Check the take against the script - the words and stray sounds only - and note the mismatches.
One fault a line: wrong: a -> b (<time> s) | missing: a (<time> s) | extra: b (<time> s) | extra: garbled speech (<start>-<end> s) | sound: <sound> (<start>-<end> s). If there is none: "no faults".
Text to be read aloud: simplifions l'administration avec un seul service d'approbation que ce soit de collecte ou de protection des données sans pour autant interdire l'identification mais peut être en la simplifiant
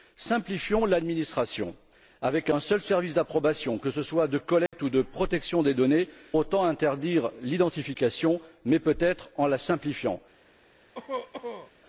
sound: dropout (4.7-4.7 s)
missing: sans pour (6.1 s)
sound: cough (11.0-11.7 s)